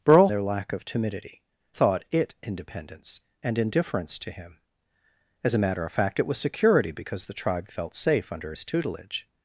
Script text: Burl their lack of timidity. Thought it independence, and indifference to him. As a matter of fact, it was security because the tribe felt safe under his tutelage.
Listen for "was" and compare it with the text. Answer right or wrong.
right